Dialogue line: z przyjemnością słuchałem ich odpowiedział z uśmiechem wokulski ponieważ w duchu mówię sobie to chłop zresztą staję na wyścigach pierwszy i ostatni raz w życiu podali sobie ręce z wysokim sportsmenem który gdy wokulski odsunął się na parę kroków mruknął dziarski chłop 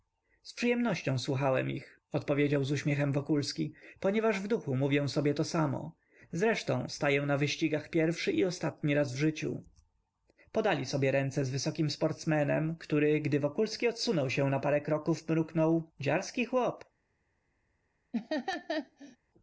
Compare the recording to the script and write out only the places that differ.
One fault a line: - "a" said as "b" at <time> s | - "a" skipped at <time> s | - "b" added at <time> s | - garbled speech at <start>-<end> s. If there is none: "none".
- "chłop" said as "samo" at 5.4 s